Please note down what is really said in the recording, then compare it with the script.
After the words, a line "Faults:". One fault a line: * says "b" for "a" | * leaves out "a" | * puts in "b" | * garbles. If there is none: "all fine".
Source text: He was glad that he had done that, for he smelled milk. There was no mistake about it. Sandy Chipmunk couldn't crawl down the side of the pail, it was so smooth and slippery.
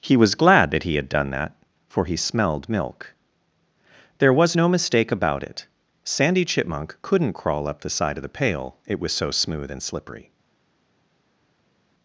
He was glad that he had done that, for he smelled milk. There was no mistake about it. Sandy Chipmunk couldn't crawl up the side of the pail, it was so smooth and slippery.
Faults:
* says "up" for "down"